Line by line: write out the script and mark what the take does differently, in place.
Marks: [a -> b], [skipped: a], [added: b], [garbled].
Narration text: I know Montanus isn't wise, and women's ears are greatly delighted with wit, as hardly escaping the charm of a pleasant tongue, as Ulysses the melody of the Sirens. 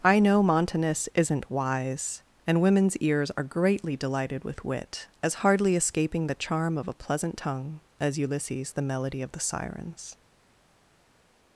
I know Montanus isn't wise, and women's ears are greatly delighted with wit, as hardly escaping the charm of a pleasant tongue, as Ulysses the melody of the Sirens.